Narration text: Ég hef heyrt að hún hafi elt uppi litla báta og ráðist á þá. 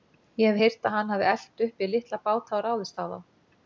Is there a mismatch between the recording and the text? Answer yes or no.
yes